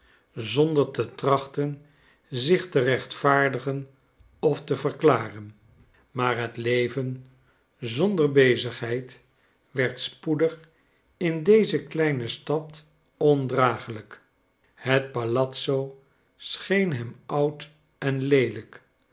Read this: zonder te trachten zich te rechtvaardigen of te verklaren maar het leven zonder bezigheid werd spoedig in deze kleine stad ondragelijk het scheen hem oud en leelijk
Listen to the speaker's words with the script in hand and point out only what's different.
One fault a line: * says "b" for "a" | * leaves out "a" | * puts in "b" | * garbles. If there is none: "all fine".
* puts in "palazzo"